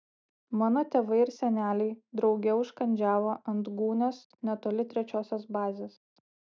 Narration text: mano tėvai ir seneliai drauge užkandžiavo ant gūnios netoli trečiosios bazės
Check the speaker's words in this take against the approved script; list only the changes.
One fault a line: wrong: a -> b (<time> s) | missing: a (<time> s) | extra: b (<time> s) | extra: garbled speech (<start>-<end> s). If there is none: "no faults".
no faults